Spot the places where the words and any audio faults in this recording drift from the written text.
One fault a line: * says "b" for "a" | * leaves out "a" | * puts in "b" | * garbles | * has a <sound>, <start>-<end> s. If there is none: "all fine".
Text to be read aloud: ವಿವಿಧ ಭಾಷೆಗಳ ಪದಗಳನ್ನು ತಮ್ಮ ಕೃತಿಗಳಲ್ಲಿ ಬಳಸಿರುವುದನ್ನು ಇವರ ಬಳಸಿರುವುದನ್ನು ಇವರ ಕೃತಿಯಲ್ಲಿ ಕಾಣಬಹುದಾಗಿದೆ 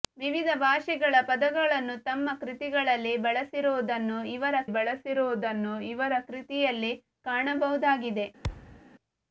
* has a thud, 8.4-8.8 s